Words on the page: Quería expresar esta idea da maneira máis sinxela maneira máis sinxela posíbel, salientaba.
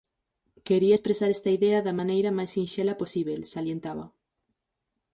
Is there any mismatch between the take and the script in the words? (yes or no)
yes